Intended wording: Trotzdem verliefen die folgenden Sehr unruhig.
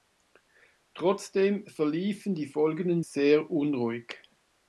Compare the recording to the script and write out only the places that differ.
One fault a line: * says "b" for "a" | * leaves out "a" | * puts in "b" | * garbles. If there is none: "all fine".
all fine